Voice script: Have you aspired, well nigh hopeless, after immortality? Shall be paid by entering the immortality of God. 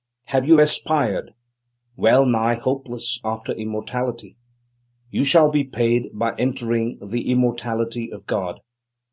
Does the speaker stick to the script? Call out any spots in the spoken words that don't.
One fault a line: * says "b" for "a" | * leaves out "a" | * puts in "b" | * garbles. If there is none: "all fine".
* puts in "You"